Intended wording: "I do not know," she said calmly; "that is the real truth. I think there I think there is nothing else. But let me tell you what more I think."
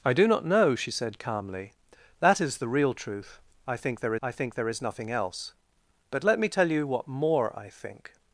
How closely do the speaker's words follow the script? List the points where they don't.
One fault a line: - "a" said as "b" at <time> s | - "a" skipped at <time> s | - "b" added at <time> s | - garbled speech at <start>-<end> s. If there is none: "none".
none